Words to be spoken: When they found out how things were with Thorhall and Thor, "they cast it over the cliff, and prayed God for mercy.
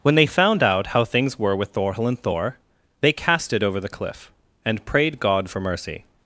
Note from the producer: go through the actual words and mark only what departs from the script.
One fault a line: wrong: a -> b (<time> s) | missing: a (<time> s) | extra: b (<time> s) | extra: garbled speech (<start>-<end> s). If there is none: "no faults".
no faults